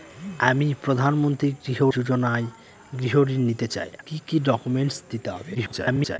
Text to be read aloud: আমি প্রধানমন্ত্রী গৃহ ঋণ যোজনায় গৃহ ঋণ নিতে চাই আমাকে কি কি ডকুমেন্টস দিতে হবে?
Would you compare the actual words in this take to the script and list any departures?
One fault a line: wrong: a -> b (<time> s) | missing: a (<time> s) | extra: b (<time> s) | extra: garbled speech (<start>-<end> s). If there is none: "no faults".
missing: ঋণ (1.8 s)
missing: আমাকে (3.9 s)
extra: garbled speech (5.5-6.2 s)